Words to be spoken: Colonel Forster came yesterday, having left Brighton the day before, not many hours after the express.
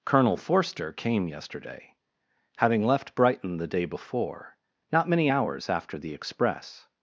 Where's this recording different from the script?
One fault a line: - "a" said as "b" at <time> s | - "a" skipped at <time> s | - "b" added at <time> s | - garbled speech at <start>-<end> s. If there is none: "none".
none